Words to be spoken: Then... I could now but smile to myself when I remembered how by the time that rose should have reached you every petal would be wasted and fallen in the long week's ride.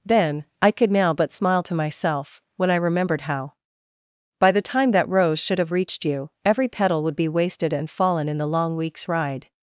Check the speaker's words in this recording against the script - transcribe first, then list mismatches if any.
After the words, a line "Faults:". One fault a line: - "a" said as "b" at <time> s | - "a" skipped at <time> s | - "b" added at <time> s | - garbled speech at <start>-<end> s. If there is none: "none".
Then... I could now but smile to myself when I remembered how by the time that rose should have reached you every petal would be wasted and fallen in the long week's ride.
Faults:
none